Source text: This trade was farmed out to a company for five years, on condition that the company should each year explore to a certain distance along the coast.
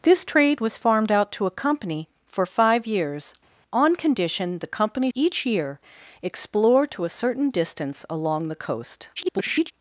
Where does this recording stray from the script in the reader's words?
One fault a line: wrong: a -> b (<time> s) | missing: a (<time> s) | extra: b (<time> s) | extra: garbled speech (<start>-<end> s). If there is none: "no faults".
missing: that (4.6 s)
missing: should (5.1 s)
extra: garbled speech (9.2-9.7 s)